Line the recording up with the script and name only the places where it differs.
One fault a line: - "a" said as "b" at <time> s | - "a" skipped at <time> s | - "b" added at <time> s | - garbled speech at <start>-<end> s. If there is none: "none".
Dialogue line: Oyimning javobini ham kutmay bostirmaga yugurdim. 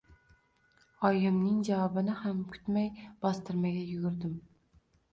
none